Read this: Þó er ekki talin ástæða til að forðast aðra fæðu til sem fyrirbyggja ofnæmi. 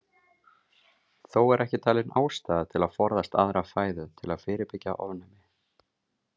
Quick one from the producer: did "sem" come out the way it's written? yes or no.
no